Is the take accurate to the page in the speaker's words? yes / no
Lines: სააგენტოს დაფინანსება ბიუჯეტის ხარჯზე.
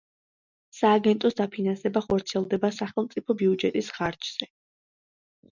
no